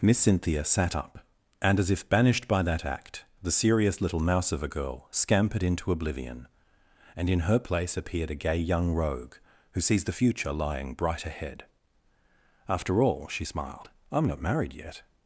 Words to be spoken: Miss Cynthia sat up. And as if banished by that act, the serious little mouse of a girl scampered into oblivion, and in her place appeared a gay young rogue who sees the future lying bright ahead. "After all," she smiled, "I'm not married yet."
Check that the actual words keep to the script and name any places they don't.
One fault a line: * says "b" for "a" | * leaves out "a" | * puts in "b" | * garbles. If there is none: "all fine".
all fine